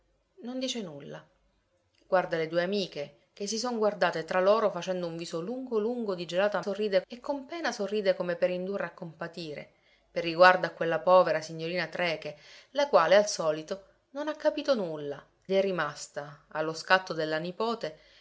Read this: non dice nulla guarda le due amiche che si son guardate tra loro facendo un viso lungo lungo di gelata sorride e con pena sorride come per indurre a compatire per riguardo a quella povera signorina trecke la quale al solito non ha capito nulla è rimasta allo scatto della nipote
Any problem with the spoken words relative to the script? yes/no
no